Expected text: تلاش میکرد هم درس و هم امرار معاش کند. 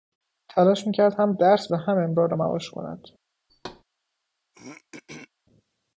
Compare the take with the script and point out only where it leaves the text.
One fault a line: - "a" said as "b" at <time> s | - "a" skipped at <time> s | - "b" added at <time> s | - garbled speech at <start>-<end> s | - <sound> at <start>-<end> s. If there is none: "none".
- thud at 3.5-3.8 s
- throat clearing at 4.5-5.3 s